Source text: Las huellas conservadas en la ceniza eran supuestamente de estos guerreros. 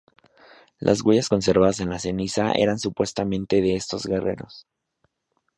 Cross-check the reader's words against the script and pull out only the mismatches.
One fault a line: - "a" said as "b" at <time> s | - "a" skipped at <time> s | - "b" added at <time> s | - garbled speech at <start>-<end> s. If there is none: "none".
none